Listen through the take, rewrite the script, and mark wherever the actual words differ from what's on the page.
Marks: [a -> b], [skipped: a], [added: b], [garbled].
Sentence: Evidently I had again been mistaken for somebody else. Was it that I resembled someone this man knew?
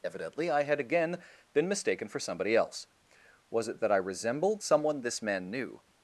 Evidently I had again been mistaken for somebody else. Was it that I resembled someone this man knew?